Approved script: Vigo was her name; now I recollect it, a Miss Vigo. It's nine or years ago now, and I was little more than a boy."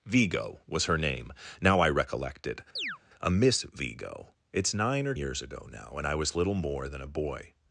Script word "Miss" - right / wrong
right